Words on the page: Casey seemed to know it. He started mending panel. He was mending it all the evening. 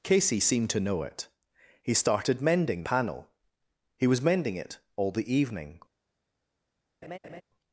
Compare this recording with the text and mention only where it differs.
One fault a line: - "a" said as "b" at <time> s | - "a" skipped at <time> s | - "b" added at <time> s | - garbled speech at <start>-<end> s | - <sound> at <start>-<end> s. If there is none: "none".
- laugh at 7.0-7.4 s